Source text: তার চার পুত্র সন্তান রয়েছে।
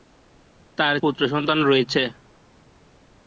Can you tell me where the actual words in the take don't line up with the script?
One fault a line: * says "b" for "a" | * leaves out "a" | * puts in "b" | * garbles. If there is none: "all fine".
* leaves out "চার"